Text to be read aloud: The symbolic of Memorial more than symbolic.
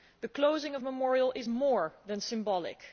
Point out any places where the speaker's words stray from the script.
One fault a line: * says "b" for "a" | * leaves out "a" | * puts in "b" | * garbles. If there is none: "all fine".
* says "closing" for "symbolic"
* puts in "is"